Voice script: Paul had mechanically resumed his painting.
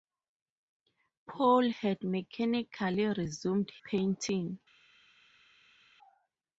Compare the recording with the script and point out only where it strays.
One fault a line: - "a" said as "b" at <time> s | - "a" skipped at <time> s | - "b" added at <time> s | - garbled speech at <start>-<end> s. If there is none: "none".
- "his" skipped at 3.7 s